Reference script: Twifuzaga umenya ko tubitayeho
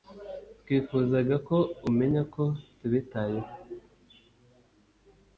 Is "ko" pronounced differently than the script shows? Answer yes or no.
no